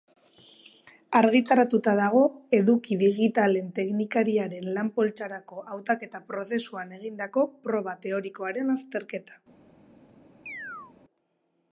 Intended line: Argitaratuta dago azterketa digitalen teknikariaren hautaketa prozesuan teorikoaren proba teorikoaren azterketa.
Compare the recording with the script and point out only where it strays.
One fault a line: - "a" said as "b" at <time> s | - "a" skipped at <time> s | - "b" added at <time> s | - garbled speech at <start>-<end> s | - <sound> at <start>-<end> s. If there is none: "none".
- "azterketa" said as "eduki" at 2.6 s
- "lan poltsarako" added at 4.8 s
- "teorikoaren" said as "egindako" at 7.0 s
- chirp at 10.5-10.9 s